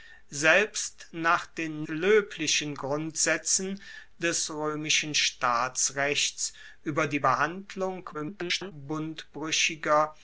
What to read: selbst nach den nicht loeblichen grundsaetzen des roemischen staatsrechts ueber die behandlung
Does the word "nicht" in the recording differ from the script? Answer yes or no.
yes